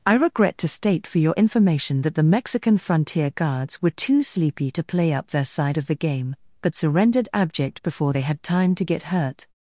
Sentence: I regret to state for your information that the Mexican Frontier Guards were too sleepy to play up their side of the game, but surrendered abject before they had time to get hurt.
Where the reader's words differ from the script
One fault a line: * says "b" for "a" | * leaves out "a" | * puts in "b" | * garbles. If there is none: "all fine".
all fine